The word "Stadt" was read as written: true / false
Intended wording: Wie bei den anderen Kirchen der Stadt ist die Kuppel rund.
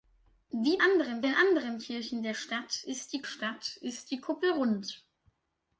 true